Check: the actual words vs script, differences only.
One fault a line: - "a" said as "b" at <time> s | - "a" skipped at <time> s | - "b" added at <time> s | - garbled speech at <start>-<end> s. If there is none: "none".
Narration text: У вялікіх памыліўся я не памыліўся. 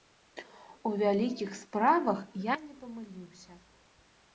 - "памыліўся" said as "справах" at 1.6 s